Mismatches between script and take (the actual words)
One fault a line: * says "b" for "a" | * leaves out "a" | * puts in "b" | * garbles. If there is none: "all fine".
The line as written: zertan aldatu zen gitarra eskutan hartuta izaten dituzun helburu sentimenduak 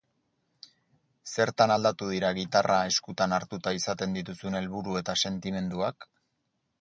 * says "dira" for "zen"
* puts in "eta"